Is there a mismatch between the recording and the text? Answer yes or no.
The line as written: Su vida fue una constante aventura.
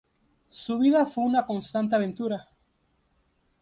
no